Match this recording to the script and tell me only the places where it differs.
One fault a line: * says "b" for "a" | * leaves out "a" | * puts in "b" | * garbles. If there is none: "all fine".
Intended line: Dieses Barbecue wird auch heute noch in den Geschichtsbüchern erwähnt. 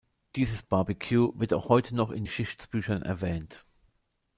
* leaves out "den"